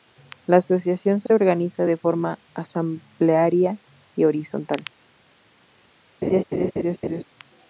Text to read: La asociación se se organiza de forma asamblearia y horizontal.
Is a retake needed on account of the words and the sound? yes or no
yes